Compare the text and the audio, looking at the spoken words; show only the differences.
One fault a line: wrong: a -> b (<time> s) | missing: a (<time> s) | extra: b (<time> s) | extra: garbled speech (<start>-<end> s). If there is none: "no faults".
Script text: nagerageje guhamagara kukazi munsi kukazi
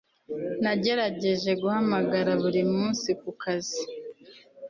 wrong: kukazi -> buri (2.4 s)